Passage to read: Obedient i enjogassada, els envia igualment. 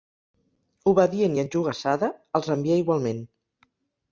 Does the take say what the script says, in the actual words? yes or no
yes